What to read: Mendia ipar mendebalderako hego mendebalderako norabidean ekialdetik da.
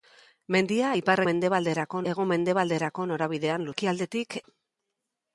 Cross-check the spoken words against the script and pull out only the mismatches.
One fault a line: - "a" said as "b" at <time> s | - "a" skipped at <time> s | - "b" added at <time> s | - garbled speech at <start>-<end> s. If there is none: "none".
none